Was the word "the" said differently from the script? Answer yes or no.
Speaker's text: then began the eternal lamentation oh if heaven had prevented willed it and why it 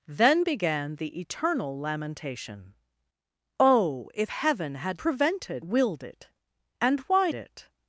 no